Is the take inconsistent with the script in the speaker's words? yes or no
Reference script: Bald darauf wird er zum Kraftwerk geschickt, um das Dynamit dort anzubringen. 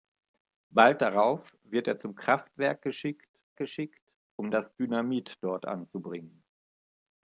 yes